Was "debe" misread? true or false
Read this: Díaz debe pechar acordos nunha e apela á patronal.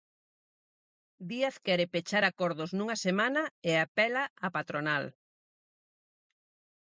true